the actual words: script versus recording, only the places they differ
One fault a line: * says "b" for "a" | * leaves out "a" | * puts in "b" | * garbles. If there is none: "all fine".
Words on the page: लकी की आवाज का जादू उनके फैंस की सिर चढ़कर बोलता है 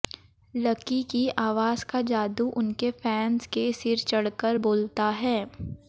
* says "के" for "की"